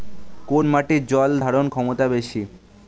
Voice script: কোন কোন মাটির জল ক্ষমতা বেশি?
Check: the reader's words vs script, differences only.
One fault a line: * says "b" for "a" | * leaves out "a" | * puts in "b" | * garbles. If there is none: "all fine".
* leaves out "কোন"
* puts in "ধারণ"